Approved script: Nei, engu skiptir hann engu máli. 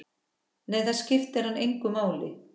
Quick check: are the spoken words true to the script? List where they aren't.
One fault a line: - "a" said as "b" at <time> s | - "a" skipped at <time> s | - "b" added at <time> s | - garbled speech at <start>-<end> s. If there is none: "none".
- "engu" said as "það" at 0.9 s